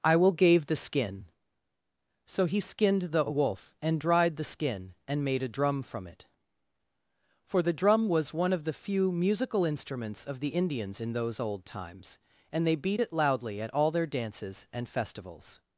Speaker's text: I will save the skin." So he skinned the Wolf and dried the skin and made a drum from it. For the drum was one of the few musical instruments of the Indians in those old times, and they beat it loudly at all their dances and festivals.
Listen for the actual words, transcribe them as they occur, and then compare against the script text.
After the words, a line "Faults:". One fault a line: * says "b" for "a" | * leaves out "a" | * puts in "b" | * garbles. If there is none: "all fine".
I will gave the skin." So he skinned the Wolf and dried the skin and made a drum from it. For the drum was one of the few musical instruments of the Indians in those old times, and they beat it loudly at all their dances and festivals.
Faults:
* says "gave" for "save"